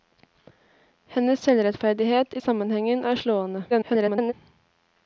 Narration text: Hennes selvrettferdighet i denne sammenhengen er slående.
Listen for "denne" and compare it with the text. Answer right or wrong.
wrong